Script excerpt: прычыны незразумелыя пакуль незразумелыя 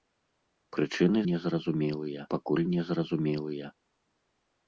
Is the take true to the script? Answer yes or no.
yes